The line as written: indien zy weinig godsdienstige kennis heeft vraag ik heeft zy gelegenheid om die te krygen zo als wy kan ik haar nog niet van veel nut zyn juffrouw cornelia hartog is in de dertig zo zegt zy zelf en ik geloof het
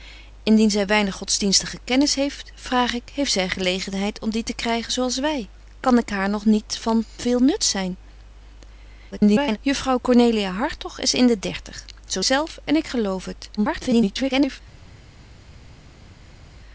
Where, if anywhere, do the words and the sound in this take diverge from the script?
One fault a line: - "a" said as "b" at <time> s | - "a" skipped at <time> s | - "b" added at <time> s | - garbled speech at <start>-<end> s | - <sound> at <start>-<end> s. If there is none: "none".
- garbled speech at 9.1-9.6 s
- "zegt zy" skipped at 12.2 s
- garbled speech at 13.6-14.6 s